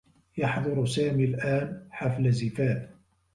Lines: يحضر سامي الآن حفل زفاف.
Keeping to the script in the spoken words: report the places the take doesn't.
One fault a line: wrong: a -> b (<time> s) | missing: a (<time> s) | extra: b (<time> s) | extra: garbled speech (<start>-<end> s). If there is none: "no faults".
no faults